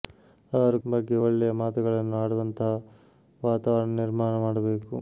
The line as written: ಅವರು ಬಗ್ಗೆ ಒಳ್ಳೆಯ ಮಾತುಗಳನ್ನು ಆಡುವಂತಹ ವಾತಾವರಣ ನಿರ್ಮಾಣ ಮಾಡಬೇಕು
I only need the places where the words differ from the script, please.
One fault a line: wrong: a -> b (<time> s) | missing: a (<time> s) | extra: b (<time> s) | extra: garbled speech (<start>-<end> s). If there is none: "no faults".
no faults